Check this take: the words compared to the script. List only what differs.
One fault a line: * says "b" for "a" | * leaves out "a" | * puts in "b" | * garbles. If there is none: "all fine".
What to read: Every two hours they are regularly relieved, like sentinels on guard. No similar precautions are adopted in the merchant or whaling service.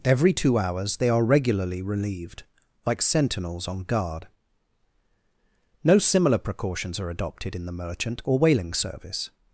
all fine